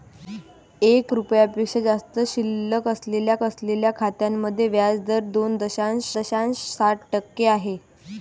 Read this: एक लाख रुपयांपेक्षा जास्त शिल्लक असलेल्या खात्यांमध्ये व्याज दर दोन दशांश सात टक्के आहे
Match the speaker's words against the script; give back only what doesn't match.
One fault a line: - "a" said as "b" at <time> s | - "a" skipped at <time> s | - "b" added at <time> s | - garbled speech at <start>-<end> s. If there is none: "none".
- "लाख" skipped at 1.1 s
- "असलेल्या" added at 3.4 s
- "दशांश" added at 6.1 s